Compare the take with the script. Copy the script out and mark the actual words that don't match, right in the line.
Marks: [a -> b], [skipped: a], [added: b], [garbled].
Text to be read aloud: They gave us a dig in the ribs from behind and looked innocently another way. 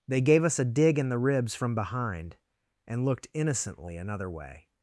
They gave us a dig in the ribs from behind and looked innocently another way.